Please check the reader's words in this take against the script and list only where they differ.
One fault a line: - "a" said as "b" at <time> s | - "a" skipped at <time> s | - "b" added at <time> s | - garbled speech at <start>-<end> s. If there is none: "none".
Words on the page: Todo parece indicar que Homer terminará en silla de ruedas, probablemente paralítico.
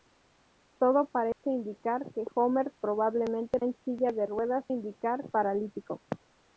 - "terminará" said as "probablemente" at 2.8 s
- "probablemente" said as "indicar" at 4.7 s